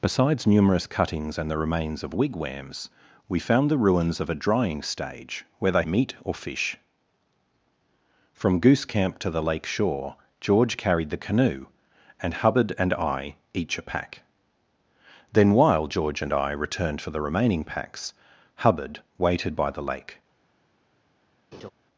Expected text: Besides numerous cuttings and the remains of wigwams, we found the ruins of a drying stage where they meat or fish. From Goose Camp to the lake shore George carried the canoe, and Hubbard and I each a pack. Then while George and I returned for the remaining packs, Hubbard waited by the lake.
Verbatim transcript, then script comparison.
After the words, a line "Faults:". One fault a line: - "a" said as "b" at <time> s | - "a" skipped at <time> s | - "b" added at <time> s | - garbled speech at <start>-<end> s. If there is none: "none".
Besides numerous cuttings and the remains of wigwams, we found the ruins of a drying stage where they meat or fish. From Goose Camp to the lake shore George carried the canoe, and Hubbard and I each a pack. Then while George and I returned for the remaining packs, Hubbard waited by the lake.
Faults:
none